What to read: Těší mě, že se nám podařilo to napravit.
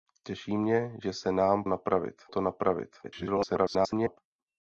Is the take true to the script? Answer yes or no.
no